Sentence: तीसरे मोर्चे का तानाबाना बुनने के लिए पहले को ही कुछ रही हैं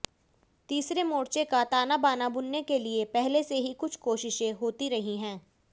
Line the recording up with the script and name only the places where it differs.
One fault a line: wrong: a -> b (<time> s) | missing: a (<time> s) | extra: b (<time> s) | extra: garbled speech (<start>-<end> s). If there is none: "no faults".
wrong: को -> से (3.4 s)
extra: कोशिशें होती (4.0 s)